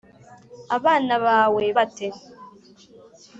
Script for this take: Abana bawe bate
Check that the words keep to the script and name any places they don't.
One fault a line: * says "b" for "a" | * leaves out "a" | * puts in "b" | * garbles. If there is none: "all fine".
all fine